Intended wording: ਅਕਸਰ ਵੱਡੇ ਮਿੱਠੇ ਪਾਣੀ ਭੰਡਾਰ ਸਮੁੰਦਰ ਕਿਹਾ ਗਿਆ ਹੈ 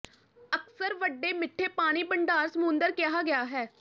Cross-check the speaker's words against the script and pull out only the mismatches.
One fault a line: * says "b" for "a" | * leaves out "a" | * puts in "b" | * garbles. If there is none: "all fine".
all fine